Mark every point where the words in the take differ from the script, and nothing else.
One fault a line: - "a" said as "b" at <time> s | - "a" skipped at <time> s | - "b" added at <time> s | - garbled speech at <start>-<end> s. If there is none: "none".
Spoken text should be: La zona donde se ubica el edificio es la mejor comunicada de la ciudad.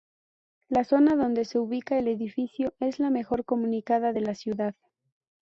none